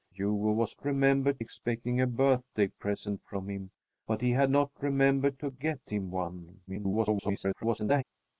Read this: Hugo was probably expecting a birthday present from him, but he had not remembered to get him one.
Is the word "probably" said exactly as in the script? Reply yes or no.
no